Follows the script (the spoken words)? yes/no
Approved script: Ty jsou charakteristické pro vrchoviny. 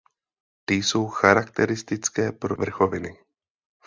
yes